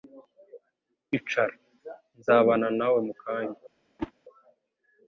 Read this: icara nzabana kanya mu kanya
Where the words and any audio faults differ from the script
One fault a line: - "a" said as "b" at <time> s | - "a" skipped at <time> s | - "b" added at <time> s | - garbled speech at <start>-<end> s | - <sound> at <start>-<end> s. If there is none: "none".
- "kanya" said as "nawe" at 2.8 s
- whoosh at 4.0-4.1 s